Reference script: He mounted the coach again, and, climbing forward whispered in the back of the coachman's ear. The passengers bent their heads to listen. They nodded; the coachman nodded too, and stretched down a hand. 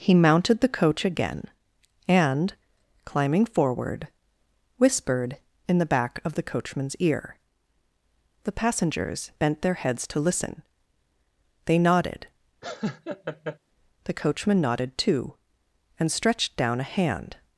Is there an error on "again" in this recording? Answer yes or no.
no